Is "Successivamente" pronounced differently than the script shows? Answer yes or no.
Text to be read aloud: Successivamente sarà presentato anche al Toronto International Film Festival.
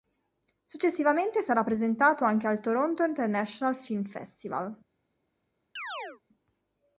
no